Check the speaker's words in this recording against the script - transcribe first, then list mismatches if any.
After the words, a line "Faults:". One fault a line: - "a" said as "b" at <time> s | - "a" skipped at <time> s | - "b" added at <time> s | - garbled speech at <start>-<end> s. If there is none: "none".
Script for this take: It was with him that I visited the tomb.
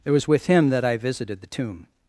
It was with him that I visited the tomb.
Faults:
none